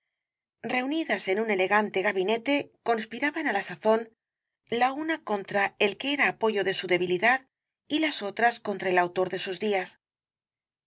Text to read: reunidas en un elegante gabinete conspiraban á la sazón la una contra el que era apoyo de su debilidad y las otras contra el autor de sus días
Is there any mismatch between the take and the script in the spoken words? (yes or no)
no